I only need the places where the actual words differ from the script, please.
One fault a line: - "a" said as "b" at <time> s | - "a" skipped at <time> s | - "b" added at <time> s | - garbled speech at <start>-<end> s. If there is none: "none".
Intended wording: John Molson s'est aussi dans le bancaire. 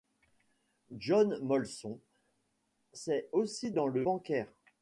none